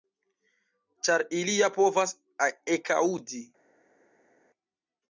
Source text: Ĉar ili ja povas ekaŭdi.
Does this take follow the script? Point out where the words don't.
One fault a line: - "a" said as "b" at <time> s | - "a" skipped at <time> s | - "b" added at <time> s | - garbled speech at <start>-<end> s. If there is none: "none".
none